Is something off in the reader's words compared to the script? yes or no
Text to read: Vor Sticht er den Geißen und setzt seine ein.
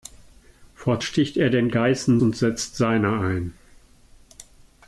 no